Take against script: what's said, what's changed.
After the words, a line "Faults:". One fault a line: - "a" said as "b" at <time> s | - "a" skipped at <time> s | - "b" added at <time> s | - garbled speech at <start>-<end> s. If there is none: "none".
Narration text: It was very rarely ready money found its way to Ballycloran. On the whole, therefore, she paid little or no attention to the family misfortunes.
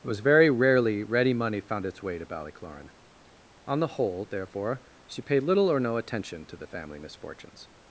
It was very rarely ready money found its way to Ballycloran. On the whole, therefore, she paid little or no attention to the family misfortunes.
Faults:
none